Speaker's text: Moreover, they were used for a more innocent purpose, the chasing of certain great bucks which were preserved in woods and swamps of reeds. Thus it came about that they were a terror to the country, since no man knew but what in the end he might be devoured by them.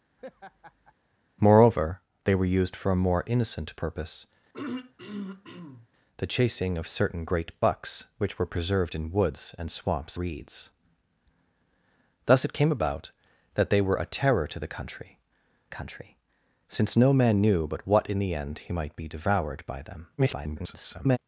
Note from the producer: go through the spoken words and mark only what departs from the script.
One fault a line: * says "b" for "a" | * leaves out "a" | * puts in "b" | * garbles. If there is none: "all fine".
* leaves out "of"
* puts in "country"
* garbles